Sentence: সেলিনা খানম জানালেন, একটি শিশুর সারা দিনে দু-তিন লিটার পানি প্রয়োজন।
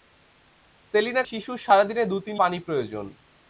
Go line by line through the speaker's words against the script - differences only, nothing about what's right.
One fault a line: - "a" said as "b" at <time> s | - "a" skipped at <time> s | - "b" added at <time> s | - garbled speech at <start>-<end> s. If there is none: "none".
- "খানম জানালেন একটি" skipped at 1.2 s
- "লিটার" skipped at 2.3 s